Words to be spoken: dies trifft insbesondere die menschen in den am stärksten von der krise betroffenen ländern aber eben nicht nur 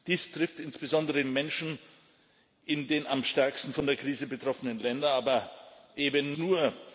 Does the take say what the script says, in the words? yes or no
no